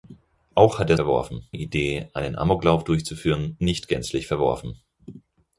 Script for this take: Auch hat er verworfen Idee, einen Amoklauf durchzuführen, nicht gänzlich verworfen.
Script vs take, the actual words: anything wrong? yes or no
no